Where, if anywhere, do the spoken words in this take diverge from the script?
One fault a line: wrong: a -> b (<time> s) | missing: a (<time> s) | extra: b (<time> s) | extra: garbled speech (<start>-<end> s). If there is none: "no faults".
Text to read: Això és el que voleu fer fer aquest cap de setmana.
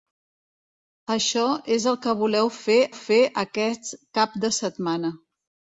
no faults